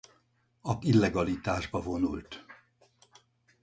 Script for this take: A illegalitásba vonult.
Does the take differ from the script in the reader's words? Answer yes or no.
no